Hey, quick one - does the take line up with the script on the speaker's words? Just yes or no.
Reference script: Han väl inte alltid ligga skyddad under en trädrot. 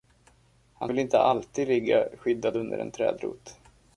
yes